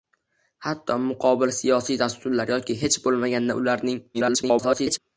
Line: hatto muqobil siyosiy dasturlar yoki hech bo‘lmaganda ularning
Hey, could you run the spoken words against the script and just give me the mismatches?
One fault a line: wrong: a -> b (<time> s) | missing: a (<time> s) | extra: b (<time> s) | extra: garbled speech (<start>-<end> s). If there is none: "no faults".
extra: garbled speech (4.1-5.0 s)